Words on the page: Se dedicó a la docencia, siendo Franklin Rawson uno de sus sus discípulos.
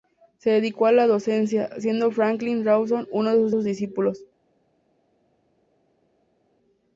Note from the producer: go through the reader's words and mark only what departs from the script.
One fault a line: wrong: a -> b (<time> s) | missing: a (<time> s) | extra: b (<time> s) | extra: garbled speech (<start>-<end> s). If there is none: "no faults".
no faults